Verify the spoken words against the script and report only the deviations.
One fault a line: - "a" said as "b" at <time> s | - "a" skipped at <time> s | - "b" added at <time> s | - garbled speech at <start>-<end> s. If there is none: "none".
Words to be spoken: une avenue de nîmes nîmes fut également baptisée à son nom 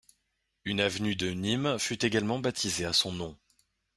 - "nîmes" skipped at 1.8 s